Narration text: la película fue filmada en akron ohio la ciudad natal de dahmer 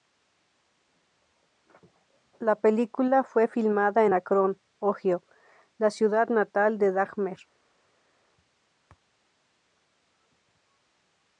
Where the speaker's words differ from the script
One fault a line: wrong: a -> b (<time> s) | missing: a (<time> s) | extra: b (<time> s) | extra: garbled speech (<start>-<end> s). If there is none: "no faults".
no faults